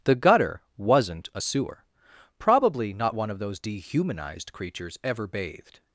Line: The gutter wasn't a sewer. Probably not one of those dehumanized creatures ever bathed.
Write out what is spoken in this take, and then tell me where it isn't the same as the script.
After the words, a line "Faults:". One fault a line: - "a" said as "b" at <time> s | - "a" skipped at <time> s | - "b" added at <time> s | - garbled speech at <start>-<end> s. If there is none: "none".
The gutter wasn't a sewer. Probably not one of those dehumanized creatures ever bathed.
Faults:
none